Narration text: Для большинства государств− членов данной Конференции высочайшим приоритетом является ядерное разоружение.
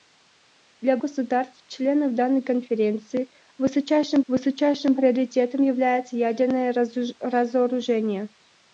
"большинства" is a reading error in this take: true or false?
true